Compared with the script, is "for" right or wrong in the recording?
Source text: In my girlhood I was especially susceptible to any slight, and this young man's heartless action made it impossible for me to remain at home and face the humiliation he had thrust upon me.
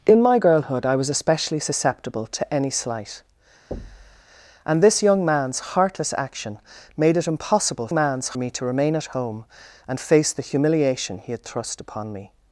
wrong